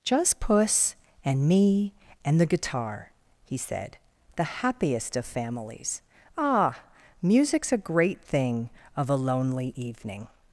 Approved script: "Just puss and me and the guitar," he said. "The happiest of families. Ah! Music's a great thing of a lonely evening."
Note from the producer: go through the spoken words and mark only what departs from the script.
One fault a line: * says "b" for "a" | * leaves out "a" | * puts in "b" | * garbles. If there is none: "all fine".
all fine